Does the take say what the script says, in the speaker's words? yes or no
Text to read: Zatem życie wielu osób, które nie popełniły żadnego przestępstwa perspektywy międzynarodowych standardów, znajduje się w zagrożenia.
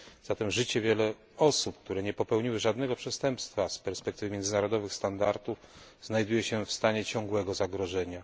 no